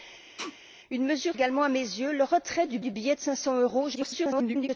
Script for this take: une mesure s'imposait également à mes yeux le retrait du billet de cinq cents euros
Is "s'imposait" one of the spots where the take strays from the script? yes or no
yes